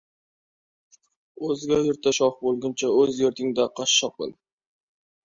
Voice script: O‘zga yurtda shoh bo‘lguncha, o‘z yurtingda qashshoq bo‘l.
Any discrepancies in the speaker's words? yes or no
no